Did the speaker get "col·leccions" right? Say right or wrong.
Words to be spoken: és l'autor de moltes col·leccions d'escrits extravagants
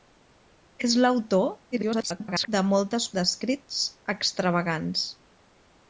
wrong